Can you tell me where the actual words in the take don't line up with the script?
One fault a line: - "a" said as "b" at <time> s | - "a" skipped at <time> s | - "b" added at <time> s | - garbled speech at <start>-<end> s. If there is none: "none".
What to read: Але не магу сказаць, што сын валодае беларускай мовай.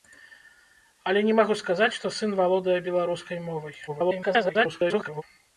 - garbled speech at 3.9-5.2 s